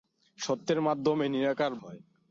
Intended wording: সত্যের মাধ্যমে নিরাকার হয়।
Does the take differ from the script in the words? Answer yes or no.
no